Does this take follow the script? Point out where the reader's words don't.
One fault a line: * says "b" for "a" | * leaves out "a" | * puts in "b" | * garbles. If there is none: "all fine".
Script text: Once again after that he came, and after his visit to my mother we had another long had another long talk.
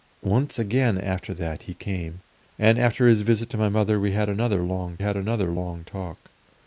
all fine